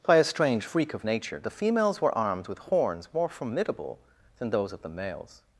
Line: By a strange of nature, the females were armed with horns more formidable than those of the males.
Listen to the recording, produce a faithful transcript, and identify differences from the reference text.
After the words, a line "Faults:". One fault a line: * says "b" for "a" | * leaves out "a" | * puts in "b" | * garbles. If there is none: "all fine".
By a strange freak of nature, the females were armed with horns more formidable than those of the males.
Faults:
* puts in "freak"